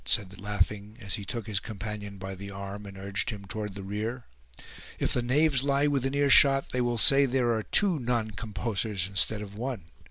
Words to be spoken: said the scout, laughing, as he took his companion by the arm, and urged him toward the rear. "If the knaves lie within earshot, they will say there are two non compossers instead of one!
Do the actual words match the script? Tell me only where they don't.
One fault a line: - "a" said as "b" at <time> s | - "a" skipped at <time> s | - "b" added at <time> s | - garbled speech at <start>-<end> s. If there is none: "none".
- "scout" skipped at 0.4 s